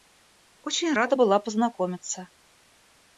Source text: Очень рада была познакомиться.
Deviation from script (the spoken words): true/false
false